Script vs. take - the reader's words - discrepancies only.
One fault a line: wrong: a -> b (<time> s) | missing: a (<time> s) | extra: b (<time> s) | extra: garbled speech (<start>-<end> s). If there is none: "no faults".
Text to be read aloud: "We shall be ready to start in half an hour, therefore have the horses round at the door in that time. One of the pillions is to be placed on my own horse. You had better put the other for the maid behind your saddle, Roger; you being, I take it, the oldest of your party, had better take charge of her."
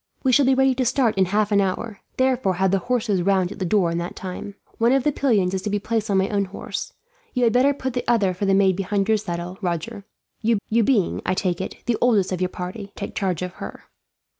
extra: you (10.7 s)
missing: had better (12.9 s)